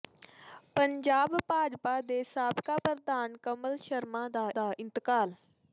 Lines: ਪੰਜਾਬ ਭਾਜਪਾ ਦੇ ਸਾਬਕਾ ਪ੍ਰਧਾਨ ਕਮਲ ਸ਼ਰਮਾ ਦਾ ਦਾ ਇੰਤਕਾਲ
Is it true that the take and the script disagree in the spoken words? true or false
false